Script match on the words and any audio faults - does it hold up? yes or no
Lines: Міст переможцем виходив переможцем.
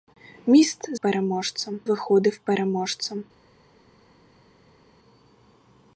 yes